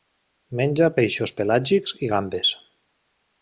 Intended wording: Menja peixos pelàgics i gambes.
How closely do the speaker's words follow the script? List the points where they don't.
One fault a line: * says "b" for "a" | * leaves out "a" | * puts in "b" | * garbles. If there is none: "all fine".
all fine